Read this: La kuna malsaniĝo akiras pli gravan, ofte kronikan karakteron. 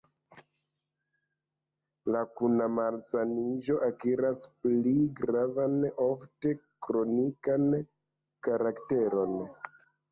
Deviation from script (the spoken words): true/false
false